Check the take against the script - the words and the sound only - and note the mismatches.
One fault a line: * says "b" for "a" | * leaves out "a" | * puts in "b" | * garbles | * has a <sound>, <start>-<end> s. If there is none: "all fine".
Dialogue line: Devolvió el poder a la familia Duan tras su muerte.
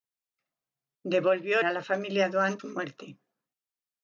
* leaves out "el poder"
* leaves out "tras"